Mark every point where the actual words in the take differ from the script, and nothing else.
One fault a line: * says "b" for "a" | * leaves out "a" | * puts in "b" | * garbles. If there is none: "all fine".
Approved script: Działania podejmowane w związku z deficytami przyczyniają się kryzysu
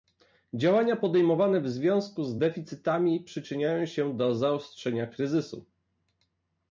* puts in "do zaostrzenia"